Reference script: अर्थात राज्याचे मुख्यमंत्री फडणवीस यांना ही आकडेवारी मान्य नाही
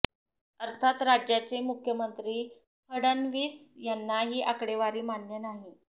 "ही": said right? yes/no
yes